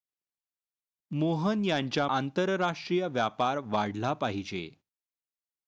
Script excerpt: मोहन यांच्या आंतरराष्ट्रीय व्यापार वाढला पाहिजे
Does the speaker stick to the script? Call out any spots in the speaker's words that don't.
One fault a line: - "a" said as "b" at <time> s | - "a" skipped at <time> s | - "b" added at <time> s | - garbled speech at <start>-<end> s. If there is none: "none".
none